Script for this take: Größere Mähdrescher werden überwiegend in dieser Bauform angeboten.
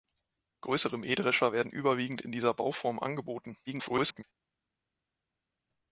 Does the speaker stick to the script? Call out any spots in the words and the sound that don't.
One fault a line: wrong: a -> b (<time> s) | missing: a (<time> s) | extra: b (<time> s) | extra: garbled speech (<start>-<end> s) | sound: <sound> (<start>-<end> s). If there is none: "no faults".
extra: garbled speech (3.7-4.2 s)